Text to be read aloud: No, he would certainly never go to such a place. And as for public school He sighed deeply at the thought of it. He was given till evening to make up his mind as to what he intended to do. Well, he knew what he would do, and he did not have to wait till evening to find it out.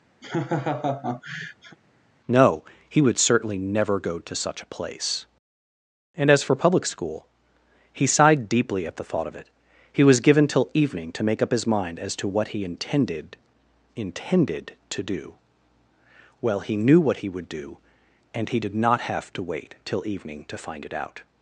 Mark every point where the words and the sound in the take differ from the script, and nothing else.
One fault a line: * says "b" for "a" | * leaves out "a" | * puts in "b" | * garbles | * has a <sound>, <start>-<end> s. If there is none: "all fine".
* has a laugh, 0.2-1.8 s
* puts in "intended"